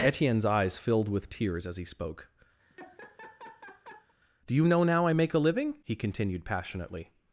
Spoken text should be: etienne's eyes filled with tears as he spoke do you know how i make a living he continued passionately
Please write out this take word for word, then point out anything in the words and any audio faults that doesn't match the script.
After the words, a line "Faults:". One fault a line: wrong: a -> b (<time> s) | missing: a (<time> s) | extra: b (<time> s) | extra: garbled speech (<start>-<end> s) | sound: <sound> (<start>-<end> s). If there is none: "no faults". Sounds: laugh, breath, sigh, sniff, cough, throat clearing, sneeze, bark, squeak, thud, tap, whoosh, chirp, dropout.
etienne's eyes filled with tears as he spoke do you know now i make a living he continued passionately
Faults:
sound: laugh (2.6-4.1 s)
wrong: how -> now (4.8 s)